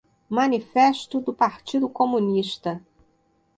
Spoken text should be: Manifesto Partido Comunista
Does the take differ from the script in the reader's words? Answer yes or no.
yes